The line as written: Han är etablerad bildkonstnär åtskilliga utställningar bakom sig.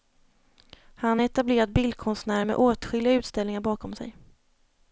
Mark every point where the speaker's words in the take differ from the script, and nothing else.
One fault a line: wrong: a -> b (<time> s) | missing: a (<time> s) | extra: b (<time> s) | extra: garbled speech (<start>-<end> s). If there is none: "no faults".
extra: med (2.4 s)